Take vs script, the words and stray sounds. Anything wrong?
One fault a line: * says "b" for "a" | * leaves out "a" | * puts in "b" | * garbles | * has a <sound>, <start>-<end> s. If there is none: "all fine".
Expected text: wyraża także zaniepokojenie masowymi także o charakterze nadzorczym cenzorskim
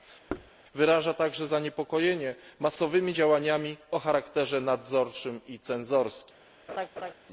* has a thud, 0.3-0.5 s
* says "działaniami" for "także"
* puts in "i"
* has a laugh, 6.7-7.1 s